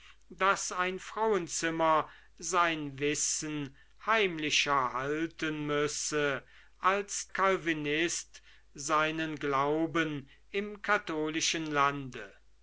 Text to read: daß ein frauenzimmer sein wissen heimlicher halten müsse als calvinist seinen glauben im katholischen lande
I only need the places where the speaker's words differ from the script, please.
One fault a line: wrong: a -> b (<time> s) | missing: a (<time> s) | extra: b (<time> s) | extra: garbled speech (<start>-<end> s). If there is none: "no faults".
no faults